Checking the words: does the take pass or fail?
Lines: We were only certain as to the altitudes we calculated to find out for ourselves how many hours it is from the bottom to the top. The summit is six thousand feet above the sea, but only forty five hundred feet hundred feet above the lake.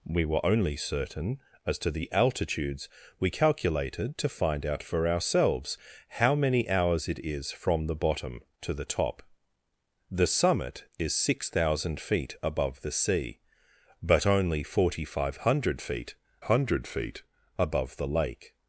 pass